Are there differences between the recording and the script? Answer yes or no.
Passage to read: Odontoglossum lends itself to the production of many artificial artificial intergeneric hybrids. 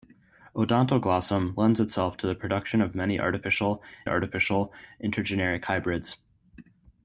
no